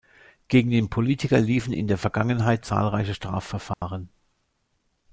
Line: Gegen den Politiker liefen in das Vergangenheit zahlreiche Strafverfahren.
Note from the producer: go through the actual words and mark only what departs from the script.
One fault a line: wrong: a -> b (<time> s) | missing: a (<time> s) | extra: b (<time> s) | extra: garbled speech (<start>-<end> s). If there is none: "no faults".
wrong: das -> der (1.9 s)